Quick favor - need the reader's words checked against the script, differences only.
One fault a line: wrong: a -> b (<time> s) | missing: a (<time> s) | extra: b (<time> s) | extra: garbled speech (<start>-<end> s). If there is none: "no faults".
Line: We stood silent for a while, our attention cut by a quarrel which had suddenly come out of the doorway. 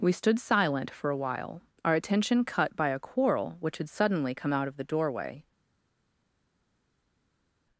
no faults